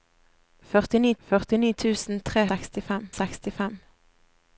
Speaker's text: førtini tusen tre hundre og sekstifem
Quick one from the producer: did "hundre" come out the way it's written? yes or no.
no